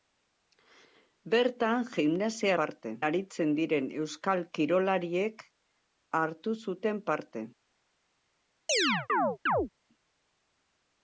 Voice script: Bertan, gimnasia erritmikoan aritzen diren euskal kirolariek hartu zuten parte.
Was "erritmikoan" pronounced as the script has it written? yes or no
no